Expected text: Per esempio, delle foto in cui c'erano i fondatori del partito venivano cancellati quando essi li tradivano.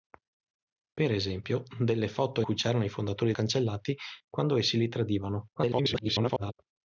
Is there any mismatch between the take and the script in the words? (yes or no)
yes